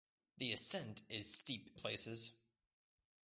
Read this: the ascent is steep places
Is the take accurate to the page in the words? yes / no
yes